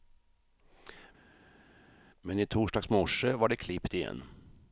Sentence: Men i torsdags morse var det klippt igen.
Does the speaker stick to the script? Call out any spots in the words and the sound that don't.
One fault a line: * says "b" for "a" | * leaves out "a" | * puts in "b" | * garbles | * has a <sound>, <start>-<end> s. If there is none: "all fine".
all fine